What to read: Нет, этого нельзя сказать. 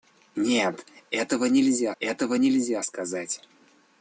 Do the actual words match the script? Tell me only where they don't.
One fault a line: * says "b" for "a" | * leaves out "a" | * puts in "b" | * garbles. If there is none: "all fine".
* puts in "этого нельзя"